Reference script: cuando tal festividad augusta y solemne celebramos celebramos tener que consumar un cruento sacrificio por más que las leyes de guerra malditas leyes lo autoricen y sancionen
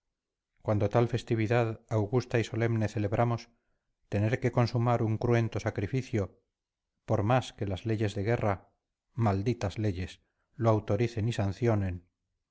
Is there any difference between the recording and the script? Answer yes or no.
yes